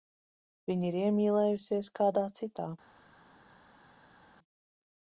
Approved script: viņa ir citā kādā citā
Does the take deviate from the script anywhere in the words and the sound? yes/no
yes